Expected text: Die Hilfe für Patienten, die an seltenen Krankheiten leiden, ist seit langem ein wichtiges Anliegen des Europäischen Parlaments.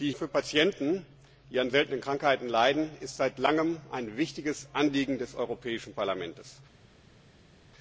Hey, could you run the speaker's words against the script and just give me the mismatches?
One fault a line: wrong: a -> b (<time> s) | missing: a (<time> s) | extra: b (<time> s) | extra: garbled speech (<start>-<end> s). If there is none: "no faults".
missing: Hilfe (0.1 s)